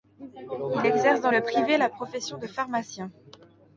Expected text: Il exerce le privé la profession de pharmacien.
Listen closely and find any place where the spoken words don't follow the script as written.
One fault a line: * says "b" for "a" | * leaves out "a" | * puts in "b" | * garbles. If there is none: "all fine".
* puts in "dans"